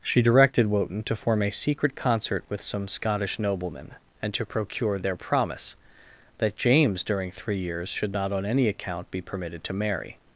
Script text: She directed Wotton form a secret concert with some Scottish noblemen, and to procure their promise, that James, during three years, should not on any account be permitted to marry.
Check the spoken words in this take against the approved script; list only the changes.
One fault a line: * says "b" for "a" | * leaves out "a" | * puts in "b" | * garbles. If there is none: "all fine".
* puts in "to"